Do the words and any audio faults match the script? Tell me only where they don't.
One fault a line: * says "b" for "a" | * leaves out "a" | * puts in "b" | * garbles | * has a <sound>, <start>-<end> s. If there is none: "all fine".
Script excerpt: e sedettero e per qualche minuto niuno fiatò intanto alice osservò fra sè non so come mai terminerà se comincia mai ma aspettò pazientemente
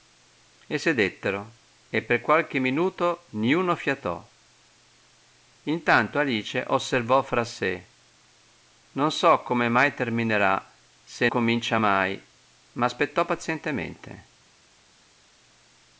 all fine